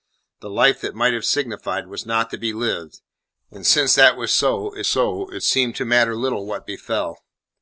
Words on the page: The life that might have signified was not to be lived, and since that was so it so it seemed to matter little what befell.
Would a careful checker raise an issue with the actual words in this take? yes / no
no